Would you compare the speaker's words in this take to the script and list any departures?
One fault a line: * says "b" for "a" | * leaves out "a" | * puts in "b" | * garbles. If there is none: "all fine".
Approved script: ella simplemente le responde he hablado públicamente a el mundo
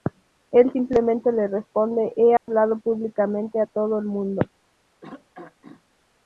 * says "él" for "ella"
* puts in "todo"